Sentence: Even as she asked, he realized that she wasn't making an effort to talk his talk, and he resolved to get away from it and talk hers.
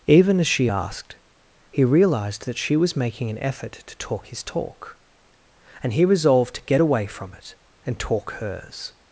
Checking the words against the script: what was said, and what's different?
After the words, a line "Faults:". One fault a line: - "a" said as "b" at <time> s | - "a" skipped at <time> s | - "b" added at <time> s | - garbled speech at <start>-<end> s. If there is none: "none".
Even as she asked, he realized that she was making an effort to talk his talk, and he resolved to get away from it and talk hers.
Faults:
- "wasn't" said as "was" at 2.8 s